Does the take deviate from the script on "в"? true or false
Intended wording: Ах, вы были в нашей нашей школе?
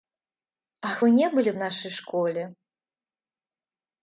false